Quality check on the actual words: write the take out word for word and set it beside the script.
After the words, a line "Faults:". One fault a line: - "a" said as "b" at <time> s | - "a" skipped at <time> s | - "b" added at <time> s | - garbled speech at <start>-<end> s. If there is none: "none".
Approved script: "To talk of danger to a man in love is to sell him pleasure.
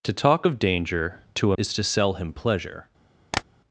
"To talk of danger to a is to sell him pleasure.
Faults:
- "man in love" skipped at 1.6 s